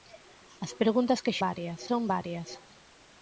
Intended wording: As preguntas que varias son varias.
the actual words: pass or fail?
pass